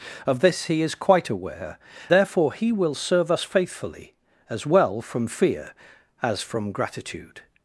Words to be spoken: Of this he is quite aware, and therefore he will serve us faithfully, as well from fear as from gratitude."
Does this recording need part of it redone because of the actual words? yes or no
yes